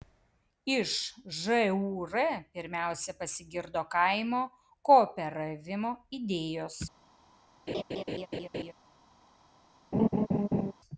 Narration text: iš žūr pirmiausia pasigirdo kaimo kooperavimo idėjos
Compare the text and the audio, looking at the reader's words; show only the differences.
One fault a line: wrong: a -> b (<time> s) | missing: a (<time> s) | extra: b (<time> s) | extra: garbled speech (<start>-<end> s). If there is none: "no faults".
no faults